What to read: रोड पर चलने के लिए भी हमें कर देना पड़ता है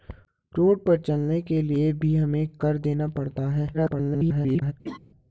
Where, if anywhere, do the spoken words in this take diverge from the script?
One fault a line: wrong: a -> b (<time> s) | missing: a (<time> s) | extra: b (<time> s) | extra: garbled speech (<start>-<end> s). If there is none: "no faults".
extra: garbled speech (3.7-4.7 s)